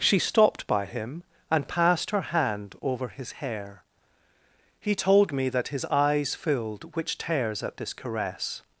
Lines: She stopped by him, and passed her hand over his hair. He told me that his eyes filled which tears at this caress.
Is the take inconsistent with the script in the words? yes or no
no